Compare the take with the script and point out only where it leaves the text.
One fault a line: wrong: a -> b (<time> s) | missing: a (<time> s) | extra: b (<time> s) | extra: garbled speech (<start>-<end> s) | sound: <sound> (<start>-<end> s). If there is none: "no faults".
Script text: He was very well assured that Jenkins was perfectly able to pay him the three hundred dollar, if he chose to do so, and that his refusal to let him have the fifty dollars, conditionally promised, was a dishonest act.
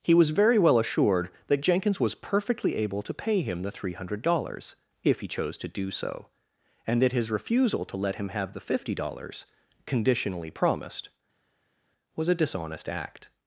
wrong: dollar -> dollars (4.2 s)